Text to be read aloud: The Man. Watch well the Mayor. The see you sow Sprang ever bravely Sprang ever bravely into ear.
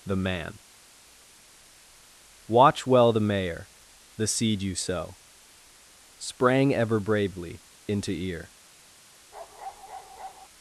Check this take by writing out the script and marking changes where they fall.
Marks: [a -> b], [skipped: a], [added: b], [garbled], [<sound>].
The Man. Watch well the Mayor. The [see -> seed] you sow Sprang ever bravely [skipped: Sprang ever bravely] into ear. [bark]